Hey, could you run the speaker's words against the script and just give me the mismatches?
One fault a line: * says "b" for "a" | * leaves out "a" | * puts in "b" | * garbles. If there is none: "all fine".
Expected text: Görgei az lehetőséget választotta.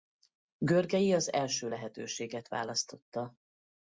* puts in "első"